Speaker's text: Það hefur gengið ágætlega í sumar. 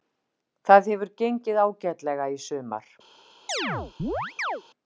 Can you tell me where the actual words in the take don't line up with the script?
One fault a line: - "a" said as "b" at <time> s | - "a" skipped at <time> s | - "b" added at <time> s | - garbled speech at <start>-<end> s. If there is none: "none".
none